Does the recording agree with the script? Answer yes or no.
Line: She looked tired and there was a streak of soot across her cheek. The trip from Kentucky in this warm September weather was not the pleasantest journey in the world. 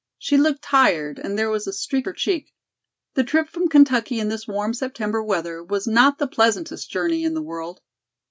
no